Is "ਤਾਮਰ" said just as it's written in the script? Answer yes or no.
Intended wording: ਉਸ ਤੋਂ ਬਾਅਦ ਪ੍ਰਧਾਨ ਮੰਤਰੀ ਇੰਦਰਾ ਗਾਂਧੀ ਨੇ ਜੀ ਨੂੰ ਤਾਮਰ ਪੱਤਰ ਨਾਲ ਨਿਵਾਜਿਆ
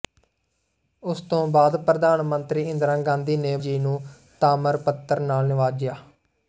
yes